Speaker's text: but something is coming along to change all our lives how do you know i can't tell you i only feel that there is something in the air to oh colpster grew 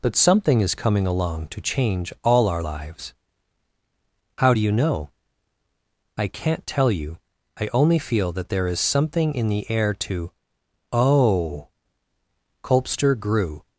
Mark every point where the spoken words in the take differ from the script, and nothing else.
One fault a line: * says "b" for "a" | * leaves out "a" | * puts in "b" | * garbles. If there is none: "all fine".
all fine